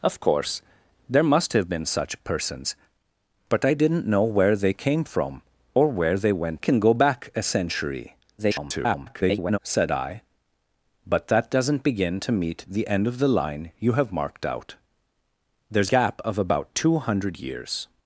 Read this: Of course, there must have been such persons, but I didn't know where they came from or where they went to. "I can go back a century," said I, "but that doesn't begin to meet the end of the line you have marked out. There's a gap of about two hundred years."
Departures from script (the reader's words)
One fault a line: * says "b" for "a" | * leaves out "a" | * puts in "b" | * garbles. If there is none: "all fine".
* leaves out "to I"
* garbles
* leaves out "a"